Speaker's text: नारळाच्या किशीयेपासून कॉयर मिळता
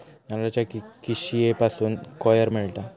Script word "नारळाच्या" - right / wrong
right